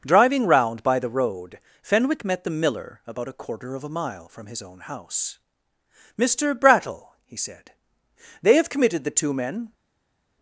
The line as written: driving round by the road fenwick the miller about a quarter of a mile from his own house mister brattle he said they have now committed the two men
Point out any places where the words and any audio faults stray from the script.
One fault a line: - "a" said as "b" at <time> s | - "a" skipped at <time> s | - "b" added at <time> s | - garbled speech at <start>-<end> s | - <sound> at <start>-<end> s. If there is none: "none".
- "met" added at 2.2 s
- "now" skipped at 8.7 s